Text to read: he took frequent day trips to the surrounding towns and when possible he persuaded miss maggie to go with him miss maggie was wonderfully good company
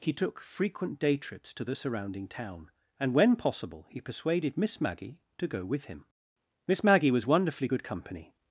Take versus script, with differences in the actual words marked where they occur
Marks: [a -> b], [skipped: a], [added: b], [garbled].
he took frequent day trips to the surrounding [towns -> town] and when possible he persuaded miss maggie to go with him miss maggie was wonderfully good company